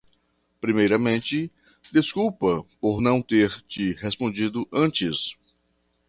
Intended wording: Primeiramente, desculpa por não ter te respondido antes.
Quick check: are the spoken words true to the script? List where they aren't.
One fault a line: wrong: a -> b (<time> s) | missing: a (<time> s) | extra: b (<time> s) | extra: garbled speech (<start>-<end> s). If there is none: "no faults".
no faults